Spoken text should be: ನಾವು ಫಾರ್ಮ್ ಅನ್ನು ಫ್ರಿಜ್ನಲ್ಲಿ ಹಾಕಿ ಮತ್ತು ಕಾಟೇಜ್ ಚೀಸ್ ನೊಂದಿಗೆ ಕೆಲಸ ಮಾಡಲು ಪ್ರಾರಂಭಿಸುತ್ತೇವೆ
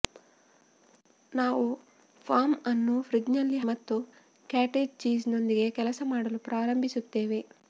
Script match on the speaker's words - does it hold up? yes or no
no